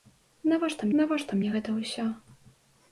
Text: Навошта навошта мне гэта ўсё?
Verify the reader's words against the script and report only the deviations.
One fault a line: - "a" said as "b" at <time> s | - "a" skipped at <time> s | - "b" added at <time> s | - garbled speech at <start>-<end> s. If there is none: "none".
none